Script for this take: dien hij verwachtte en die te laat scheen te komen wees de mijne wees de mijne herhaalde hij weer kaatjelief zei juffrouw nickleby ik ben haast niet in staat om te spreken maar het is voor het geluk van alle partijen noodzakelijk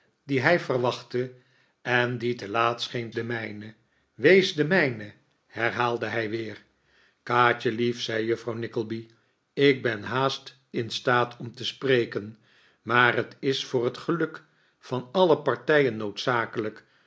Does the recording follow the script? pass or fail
fail